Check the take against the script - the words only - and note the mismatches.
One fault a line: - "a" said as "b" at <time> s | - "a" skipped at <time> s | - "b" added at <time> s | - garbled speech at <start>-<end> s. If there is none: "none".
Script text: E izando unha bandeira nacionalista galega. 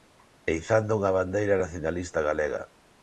none